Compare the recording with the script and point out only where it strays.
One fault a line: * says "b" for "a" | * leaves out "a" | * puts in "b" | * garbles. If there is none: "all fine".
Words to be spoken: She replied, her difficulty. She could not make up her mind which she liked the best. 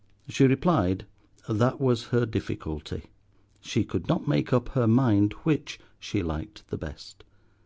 * puts in "that was"